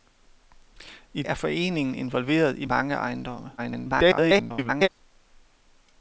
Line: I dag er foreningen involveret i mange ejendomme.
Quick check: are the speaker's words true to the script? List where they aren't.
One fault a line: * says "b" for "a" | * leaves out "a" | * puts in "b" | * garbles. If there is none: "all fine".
* leaves out "dag"
* garbles